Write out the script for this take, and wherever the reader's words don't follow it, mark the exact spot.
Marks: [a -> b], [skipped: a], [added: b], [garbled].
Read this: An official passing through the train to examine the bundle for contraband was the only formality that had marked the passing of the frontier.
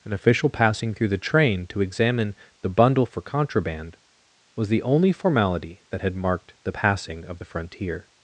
An official passing through the train to examine the bundle for contraband was the only formality that had marked the passing of the frontier.